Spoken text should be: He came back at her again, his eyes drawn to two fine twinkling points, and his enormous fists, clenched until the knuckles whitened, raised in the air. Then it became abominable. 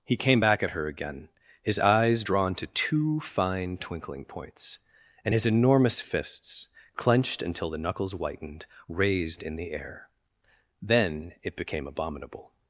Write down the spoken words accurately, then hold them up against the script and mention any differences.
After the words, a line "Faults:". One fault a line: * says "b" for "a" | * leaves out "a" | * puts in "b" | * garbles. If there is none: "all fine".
He came back at her again, his eyes drawn to two fine twinkling points, and his enormous fists, clenched until the knuckles whitened, raised in the air. Then it became abominable.
Faults:
all fine